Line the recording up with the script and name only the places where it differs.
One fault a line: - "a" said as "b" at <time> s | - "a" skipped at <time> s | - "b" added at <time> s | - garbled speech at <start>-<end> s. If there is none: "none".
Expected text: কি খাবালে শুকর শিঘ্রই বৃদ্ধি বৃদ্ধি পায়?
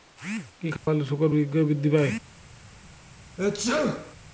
- "বৃদ্ধি" skipped at 1.9 s